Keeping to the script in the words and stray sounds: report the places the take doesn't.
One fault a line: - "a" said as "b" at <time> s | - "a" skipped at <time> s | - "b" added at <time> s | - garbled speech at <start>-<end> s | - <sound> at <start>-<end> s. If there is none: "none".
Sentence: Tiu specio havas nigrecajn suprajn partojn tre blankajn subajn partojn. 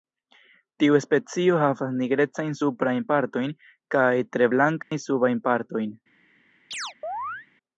- "kaj" added at 4.0 s
- dropout at 4.8-4.9 s
- chirp at 6.7-7.5 s